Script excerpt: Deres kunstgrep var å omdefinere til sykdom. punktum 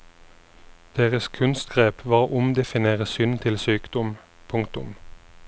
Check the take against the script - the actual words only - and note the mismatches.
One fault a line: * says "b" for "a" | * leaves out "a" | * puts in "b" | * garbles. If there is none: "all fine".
* puts in "synd"